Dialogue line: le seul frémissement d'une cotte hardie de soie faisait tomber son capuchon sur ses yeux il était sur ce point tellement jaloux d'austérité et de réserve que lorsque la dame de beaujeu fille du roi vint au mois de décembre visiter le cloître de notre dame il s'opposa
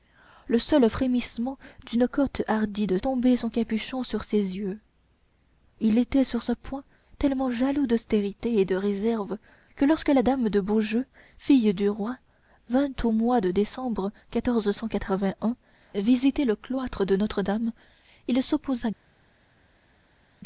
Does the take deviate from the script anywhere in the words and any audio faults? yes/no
yes